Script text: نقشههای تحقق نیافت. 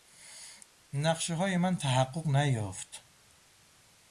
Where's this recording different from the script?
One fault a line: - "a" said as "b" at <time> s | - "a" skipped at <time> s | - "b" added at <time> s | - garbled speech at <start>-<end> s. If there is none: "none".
- "من" added at 1.6 s